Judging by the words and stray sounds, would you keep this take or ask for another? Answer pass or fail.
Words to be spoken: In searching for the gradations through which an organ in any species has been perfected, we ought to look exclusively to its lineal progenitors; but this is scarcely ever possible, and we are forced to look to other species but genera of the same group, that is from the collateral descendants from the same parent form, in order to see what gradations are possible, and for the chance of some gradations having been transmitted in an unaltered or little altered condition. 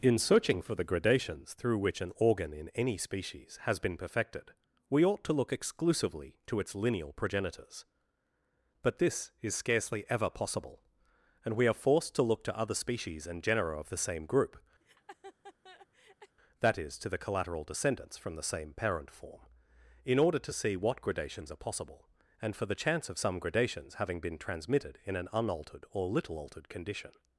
fail